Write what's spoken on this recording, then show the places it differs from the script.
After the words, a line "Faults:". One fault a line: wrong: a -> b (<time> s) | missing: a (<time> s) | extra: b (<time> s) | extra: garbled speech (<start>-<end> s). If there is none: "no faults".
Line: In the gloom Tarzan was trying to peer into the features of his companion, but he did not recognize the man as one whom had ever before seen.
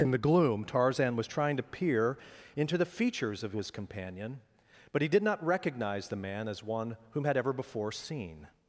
In the gloom Tarzan was trying to peer into the features of his companion, but he did not recognize the man as one whom had ever before seen.
Faults:
no faults